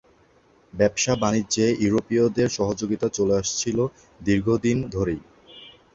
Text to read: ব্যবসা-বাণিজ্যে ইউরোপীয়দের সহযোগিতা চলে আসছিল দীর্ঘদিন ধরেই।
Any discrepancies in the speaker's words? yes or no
no